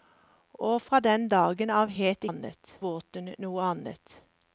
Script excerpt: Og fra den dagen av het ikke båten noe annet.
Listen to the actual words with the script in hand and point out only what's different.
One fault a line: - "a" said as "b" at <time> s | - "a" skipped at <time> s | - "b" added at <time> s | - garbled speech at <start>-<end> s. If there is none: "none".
- "ikke" said as "annet" at 2.3 s